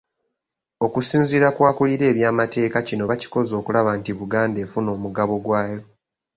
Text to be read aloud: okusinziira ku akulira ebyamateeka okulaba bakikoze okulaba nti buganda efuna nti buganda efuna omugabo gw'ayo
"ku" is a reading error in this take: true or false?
false